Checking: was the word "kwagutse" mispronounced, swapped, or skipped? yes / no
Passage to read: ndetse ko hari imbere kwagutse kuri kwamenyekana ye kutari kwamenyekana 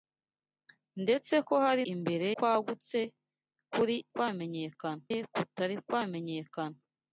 no